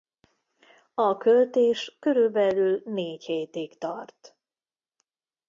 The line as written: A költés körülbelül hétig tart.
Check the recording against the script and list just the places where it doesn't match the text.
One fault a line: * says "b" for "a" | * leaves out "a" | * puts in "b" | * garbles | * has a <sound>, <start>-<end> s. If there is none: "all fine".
* puts in "négy"